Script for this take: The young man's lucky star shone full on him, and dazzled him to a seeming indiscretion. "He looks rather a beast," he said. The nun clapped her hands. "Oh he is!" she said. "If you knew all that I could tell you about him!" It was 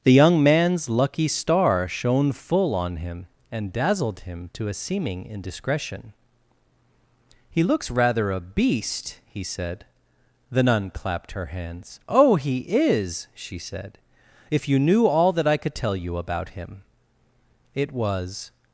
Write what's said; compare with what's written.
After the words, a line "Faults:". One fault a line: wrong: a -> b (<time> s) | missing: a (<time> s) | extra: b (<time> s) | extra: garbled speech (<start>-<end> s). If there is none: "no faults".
The young man's lucky star shone full on him, and dazzled him to a seeming indiscretion. "He looks rather a beast," he said. The nun clapped her hands. "Oh he is!" she said. "If you knew all that I could tell you about him!" It was
Faults:
no faults